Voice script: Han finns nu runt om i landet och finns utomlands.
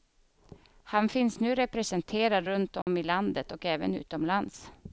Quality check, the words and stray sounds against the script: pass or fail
fail